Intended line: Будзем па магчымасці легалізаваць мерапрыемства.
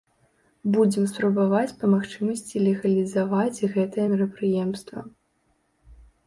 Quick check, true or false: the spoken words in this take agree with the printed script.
false